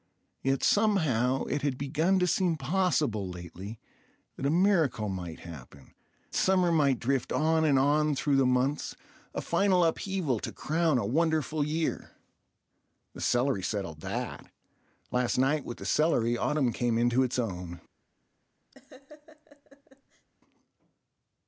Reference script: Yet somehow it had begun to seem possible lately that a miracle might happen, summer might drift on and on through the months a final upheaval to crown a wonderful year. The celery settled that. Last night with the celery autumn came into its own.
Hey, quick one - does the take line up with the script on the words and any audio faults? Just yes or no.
no